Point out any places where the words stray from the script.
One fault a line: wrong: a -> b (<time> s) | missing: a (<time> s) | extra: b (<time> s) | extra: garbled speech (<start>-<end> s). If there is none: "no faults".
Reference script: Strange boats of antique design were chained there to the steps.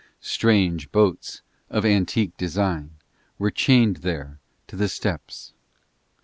no faults